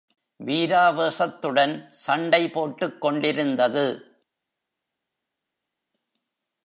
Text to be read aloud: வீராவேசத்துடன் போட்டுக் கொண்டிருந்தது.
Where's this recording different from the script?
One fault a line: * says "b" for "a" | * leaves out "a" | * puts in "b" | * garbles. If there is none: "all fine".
* puts in "சண்டை"